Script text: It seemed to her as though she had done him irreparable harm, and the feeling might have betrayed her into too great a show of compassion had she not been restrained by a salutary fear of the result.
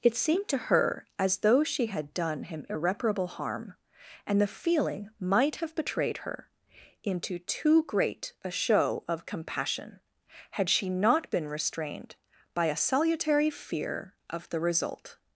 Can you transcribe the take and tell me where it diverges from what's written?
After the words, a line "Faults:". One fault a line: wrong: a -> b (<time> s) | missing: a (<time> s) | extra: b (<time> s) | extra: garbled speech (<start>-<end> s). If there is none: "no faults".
It seemed to her as though she had done him irreparable harm, and the feeling might have betrayed her into too great a show of compassion had she not been restrained by a salutary fear of the result.
Faults:
no faults